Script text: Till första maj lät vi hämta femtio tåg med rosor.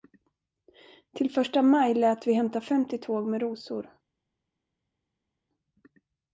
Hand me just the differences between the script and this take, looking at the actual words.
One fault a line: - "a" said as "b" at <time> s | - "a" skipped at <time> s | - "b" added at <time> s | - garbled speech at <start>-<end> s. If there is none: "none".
none